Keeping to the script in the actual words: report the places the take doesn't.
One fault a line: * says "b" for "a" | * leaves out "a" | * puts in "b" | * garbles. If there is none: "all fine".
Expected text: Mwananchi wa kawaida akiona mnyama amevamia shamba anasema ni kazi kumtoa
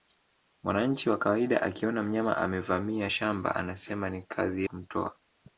all fine